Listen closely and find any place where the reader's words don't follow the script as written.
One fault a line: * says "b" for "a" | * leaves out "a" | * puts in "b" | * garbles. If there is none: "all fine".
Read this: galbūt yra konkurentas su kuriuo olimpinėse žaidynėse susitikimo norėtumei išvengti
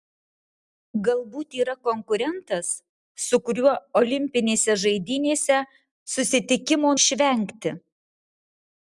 * leaves out "norėtumei"